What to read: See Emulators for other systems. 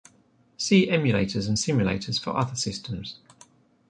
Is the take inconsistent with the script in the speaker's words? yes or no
yes